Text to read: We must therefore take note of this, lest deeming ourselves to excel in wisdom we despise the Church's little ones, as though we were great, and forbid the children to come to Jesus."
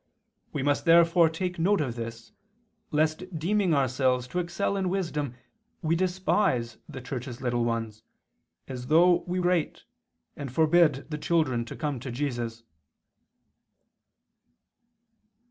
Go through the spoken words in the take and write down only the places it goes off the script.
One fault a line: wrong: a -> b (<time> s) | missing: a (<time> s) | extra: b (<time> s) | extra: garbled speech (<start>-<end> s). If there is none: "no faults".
missing: were (9.4 s)